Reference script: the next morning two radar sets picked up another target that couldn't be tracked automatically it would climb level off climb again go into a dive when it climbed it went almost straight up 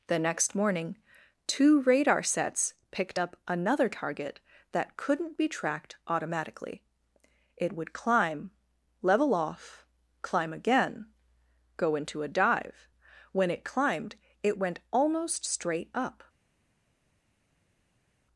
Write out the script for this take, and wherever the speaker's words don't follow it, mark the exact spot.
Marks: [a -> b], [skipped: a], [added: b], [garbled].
the next morning two radar sets picked up another target that couldn't be tracked automatically it would climb level off climb again go into a dive when it climbed it went almost straight up